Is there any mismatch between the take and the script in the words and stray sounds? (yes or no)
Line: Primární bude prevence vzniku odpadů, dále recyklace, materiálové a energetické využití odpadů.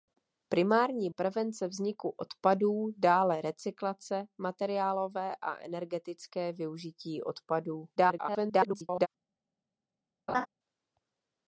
yes